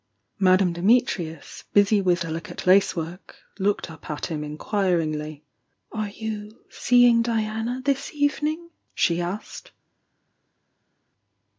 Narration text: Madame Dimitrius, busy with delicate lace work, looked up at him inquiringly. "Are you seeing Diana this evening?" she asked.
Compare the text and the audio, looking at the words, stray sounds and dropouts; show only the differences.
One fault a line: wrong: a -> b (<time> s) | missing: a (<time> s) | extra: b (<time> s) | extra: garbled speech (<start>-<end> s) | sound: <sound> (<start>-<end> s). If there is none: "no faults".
no faults